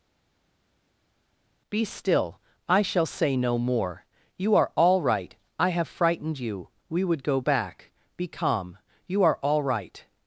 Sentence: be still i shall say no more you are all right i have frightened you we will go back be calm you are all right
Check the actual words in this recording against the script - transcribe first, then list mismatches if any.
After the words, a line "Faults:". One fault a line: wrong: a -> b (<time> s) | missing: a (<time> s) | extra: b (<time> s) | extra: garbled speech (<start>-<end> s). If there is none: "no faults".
be still i shall say no more you are all right i have frightened you we would go back be calm you are all right
Faults:
wrong: will -> would (7.0 s)